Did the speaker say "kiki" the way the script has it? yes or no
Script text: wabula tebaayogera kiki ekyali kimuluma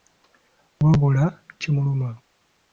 no